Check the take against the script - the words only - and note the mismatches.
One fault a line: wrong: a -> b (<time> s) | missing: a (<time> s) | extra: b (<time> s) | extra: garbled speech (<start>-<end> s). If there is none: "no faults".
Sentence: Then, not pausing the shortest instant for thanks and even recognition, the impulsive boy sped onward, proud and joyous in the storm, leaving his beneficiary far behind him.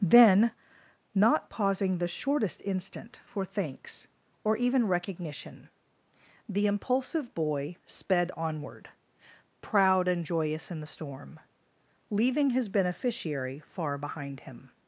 wrong: and -> or (4.4 s)